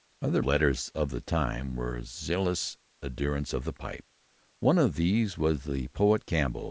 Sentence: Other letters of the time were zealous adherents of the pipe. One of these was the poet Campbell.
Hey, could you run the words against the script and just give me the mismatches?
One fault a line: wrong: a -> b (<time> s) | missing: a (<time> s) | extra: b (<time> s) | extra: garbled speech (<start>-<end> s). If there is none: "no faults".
no faults